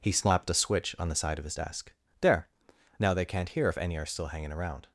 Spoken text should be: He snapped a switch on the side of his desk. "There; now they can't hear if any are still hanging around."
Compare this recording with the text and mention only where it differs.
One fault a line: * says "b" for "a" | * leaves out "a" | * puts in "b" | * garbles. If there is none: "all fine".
* says "slapped" for "snapped"